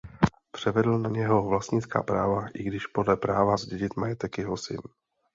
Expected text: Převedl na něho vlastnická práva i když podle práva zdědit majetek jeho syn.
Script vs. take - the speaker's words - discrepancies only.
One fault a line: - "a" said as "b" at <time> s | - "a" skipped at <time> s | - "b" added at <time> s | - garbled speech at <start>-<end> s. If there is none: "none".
none